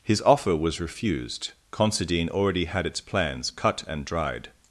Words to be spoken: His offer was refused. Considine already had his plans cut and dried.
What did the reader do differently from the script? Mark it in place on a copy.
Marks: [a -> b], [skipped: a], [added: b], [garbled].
His offer was refused. Considine already had [his -> its] plans cut and dried.